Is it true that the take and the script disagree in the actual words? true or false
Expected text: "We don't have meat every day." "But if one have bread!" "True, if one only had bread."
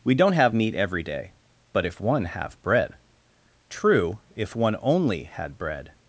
false